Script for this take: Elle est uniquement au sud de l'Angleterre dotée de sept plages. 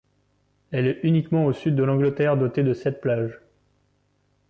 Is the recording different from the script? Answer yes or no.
no